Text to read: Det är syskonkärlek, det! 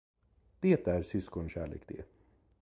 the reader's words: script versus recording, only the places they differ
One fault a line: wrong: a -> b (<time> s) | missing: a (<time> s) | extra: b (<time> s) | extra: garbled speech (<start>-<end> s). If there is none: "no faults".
no faults